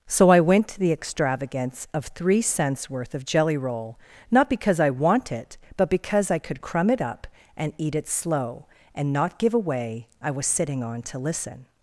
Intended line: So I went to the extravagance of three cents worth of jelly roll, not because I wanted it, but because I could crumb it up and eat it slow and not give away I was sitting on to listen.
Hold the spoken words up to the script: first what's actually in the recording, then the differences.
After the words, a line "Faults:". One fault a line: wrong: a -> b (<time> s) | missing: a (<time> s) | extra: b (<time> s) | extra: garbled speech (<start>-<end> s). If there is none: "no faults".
So I went to the extravagance of three cents worth of jelly roll, not because I want it, but because I could crumb it up and eat it slow and not give away I was sitting on to listen.
Faults:
wrong: wanted -> want (4.9 s)